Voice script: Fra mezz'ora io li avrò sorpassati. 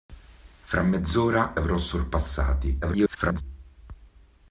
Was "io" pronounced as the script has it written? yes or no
no